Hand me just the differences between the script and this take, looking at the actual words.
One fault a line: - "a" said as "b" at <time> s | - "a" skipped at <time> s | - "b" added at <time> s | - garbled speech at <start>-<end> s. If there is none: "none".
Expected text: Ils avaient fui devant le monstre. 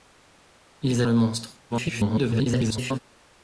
- "avaient fui devant" skipped at 1.0 s
- garbled speech at 1.7-3.0 s